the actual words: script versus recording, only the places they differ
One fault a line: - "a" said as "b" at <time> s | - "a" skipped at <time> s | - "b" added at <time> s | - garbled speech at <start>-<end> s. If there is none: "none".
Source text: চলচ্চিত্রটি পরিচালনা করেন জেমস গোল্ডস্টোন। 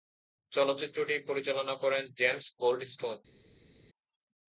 none